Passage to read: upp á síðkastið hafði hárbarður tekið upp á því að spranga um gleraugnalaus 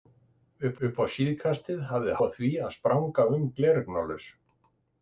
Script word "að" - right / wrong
right